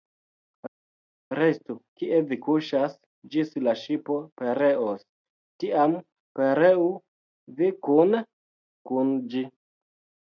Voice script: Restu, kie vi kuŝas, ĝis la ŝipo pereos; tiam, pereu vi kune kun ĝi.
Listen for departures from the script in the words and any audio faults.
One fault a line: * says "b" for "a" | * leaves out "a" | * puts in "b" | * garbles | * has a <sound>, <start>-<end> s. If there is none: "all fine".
all fine